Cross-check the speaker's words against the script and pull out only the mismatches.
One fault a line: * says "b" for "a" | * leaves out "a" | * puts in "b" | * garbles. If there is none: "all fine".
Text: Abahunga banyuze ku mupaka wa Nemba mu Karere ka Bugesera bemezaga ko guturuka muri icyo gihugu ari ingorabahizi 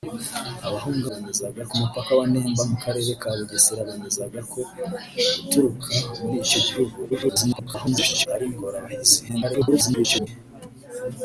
* says "bemezaga" for "banyuze"
* garbles
* garbles